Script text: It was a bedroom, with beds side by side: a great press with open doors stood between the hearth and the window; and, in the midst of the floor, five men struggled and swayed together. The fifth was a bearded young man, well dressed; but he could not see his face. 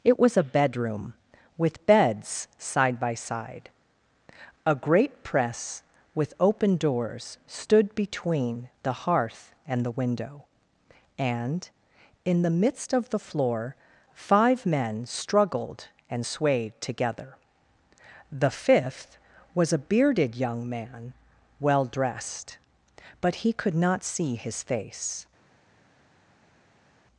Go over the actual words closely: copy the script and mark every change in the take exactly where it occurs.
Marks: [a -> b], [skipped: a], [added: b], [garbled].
It was a bedroom, with beds side by side: a great press with open doors stood between the hearth and the window; and, in the midst of the floor, five men struggled and swayed together. The fifth was a bearded young man, well dressed; but he could not see his face.